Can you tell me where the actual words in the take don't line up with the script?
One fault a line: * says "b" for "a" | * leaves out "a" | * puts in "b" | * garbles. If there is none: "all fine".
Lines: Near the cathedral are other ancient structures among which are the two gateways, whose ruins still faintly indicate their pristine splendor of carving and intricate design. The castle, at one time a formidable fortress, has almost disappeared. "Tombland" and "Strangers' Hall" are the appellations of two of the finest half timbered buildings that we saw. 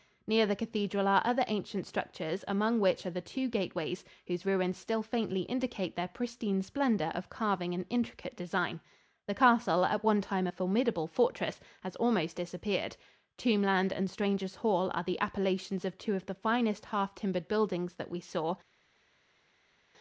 all fine